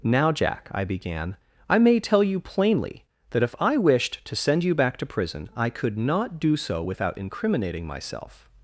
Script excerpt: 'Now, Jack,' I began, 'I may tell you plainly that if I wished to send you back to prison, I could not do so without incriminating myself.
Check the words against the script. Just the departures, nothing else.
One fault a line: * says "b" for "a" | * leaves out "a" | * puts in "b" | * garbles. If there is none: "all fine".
all fine